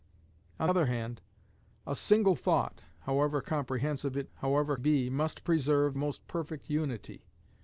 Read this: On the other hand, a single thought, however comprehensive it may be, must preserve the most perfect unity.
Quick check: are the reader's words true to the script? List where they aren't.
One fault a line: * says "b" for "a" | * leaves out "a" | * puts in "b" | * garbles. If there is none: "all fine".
* leaves out "the"
* says "however" for "may"
* leaves out "the"